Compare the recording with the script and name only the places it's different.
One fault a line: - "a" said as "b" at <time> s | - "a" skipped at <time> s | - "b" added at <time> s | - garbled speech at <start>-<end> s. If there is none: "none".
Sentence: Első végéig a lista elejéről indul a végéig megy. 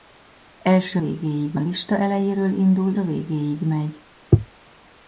none